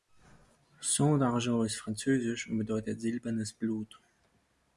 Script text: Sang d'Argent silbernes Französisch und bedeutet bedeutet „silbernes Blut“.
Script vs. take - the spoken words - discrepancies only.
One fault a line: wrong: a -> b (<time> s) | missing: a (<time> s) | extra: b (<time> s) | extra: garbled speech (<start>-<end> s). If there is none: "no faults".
wrong: silbernes -> ist (1.6 s)
missing: bedeutet (3.0 s)